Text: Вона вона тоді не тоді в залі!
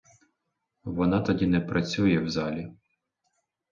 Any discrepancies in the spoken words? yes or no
yes